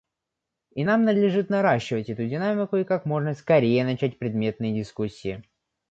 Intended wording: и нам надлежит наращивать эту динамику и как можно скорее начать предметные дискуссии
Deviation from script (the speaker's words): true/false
false